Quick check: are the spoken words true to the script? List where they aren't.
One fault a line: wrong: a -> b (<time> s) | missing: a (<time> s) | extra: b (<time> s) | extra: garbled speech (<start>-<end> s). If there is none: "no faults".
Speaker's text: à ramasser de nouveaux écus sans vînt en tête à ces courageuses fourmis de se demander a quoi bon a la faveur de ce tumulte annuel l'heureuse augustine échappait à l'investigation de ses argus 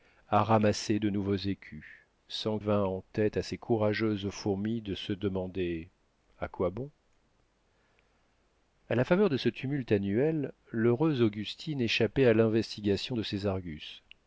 no faults